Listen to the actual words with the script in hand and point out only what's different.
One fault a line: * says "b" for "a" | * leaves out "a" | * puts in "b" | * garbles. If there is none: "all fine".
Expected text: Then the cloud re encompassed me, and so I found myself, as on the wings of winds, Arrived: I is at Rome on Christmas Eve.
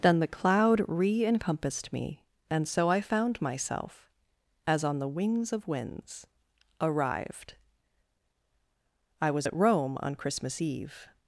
* says "was" for "is"